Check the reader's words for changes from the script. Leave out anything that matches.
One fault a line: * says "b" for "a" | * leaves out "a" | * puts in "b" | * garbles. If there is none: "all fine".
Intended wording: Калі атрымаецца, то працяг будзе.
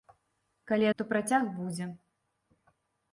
* leaves out "атрымаецца"